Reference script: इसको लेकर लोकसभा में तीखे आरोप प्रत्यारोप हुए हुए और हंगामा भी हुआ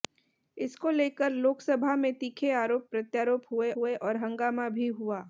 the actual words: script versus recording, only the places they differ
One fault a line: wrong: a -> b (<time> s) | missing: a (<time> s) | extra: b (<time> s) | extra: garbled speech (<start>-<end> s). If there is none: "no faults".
no faults